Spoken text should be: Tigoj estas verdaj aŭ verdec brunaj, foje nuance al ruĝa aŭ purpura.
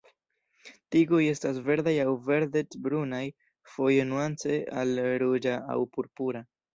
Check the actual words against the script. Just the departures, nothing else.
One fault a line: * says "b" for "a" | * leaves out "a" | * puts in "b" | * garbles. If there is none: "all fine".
all fine